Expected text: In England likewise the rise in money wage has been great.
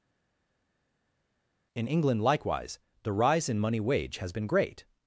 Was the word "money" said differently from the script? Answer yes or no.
no